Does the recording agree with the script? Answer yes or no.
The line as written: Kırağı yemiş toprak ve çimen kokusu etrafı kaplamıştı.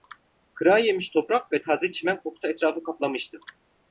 no